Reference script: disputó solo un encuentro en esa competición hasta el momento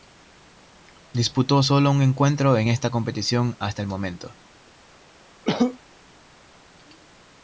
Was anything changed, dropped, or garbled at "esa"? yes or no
yes